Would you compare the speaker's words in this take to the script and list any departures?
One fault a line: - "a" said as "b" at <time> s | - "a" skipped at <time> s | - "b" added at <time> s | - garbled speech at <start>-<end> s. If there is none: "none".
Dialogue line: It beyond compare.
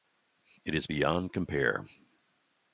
- "is" added at 0.7 s